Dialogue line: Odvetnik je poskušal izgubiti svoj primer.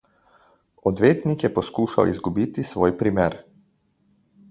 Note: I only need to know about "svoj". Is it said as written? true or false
true